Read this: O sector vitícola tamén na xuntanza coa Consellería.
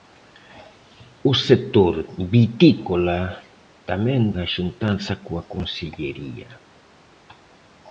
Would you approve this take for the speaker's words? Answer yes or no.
yes